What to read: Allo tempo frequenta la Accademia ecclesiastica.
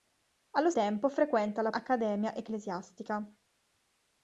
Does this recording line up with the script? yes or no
yes